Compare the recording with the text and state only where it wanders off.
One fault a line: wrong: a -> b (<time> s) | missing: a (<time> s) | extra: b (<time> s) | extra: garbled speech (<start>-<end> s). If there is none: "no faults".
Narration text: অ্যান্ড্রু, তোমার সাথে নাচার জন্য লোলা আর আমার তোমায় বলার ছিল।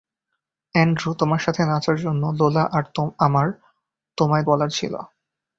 no faults